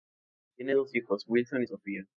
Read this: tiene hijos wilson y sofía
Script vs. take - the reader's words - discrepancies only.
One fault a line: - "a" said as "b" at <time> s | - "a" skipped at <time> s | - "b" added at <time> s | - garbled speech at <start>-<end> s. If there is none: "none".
- "dos" added at 0.7 s